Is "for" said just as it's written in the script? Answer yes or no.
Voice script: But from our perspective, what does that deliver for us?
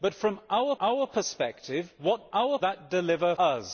no